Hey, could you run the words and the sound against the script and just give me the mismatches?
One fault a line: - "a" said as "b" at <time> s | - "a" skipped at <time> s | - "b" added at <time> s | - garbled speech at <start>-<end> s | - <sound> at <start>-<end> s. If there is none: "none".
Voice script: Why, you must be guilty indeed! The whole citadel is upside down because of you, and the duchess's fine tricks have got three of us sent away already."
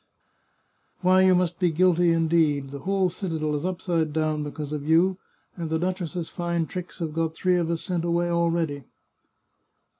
none